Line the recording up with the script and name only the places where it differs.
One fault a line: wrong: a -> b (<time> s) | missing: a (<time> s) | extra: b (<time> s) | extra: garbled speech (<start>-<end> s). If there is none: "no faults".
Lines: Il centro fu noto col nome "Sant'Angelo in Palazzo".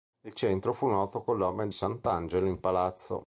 no faults